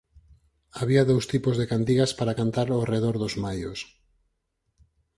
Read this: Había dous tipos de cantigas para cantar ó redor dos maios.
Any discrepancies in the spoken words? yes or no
no